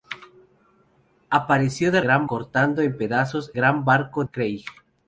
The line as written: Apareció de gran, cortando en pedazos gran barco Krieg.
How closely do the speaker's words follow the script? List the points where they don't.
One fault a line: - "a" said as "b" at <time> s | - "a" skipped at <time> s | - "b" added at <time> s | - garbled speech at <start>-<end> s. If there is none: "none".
none